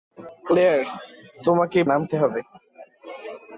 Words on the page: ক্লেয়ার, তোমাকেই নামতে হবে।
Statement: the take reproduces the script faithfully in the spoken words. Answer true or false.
true